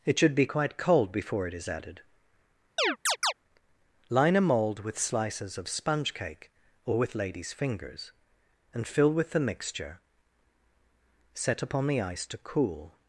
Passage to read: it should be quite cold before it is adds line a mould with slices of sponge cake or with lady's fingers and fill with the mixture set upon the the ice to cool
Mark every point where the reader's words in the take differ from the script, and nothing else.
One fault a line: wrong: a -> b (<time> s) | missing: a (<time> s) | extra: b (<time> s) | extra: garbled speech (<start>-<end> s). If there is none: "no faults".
wrong: adds -> added (1.7 s)
missing: the (12.0 s)